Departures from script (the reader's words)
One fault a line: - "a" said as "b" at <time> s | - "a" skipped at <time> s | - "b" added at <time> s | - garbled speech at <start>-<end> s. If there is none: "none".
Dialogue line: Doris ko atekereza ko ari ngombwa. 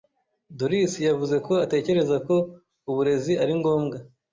- "yavuze" added at 1.1 s
- "uburezi" added at 2.9 s